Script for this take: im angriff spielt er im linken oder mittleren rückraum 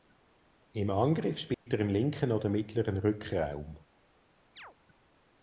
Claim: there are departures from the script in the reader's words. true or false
false